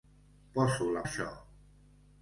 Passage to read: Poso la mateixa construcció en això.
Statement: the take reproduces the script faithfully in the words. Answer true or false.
false